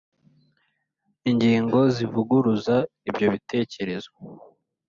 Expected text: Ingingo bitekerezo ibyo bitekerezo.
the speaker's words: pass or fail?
fail